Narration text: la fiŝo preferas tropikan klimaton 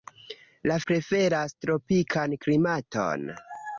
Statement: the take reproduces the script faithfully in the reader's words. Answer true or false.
false